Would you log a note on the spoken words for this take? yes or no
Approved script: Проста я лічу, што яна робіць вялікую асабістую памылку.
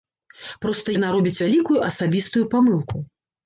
yes